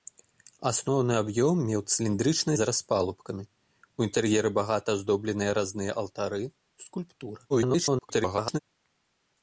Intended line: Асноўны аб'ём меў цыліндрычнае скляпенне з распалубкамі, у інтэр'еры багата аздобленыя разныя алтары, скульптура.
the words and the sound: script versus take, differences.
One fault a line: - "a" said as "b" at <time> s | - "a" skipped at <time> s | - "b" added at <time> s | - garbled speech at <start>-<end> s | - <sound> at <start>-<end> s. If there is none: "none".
- "скляпенне" skipped at 2.5 s
- garbled speech at 7.5-8.6 s